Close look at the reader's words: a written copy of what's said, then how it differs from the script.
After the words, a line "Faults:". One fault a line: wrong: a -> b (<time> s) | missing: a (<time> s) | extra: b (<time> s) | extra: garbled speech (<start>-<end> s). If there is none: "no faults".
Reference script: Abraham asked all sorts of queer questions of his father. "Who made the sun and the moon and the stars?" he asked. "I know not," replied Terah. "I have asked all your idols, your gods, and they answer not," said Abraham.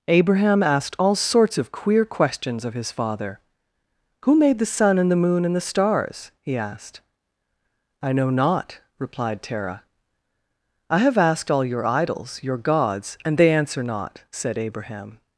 Abraham asked all sorts of queer questions of his father. "Who made the sun and the moon and the stars?" he asked. "I know not," replied Terah. "I have asked all your idols, your gods, and they answer not," said Abraham.
Faults:
no faults